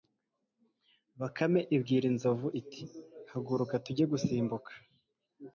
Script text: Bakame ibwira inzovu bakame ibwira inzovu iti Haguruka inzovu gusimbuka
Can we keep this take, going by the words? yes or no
no